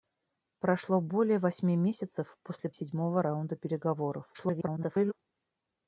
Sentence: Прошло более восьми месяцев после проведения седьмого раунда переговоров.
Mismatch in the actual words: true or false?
true